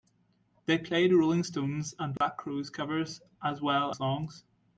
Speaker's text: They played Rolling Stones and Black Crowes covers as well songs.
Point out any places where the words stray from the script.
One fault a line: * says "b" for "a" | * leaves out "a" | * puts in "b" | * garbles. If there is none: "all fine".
all fine